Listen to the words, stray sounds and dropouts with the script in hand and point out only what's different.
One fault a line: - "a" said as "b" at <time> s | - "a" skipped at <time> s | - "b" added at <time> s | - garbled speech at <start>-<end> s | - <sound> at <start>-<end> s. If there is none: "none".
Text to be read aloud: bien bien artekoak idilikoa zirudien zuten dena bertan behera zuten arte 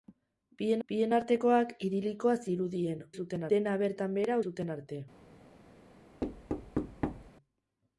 - thud at 6.2-7.3 s